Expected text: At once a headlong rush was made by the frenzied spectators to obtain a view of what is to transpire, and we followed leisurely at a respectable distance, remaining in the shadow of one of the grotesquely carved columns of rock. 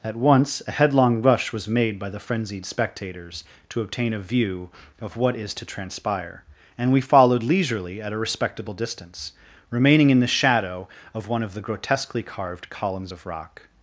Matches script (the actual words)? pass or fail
pass